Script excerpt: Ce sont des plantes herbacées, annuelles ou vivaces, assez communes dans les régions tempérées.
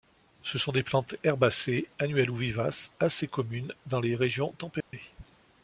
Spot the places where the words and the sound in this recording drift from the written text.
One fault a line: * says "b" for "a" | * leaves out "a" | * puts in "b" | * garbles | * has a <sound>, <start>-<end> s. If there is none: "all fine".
* has a dropout, 4.8-4.9 s